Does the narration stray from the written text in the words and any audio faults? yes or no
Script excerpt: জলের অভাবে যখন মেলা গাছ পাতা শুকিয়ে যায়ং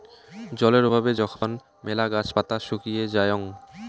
yes